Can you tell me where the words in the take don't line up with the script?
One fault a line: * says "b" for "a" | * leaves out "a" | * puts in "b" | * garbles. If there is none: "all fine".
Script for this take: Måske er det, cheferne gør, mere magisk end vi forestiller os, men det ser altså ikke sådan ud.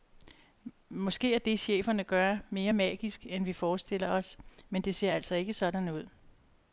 all fine